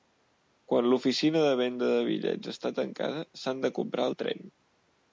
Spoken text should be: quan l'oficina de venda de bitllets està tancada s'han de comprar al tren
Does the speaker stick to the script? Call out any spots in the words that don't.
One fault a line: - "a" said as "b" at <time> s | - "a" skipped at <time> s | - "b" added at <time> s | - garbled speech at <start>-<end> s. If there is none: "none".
none